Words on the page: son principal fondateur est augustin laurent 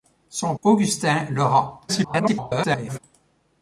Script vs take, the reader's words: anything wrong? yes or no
yes